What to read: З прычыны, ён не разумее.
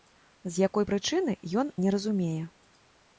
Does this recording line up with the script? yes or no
no